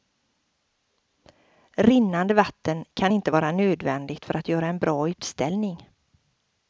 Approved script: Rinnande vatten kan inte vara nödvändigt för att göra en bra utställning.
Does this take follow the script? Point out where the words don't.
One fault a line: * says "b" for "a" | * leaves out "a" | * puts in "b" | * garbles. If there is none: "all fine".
all fine